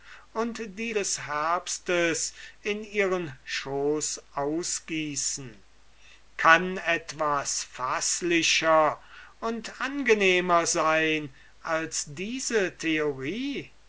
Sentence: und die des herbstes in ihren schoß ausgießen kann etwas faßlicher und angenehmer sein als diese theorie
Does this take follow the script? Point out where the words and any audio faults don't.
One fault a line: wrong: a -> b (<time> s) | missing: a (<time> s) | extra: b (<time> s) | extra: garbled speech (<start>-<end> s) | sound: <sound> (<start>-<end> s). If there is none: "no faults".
no faults